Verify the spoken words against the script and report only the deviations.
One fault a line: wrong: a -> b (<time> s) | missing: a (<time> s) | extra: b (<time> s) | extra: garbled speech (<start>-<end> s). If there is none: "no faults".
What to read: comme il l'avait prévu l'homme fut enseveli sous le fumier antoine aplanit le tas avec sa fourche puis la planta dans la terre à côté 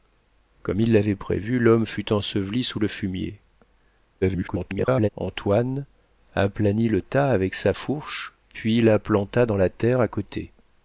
extra: garbled speech (4.2-5.1 s)